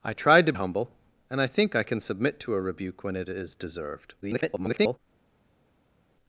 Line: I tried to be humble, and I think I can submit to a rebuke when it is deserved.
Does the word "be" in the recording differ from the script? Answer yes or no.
yes